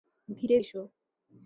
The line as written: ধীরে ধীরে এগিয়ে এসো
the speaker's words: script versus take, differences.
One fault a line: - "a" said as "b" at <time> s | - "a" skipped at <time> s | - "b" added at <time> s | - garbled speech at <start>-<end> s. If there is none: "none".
- "ধীরে এগিয়ে" skipped at 0.6 s